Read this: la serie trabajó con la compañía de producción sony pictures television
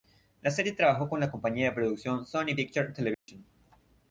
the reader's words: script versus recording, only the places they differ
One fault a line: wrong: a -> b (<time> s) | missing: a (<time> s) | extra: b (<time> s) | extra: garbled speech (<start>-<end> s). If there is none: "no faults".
no faults